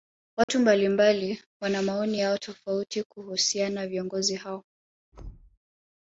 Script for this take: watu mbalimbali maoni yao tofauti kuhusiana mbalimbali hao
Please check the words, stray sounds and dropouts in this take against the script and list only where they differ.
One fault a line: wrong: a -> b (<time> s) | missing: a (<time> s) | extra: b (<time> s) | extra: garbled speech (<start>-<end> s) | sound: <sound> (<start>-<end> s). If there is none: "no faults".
sound: dropout (0.4-0.5 s)
extra: wana (1.6 s)
wrong: mbalimbali -> viongozi (3.9 s)
sound: thud (5.1-5.6 s)